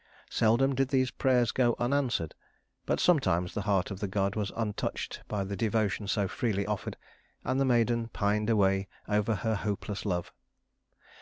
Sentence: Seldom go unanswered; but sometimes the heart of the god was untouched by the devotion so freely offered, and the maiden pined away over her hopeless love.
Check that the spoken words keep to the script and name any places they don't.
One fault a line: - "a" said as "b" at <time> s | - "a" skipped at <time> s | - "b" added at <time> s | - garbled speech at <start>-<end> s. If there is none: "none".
- "did these prayers" added at 0.7 s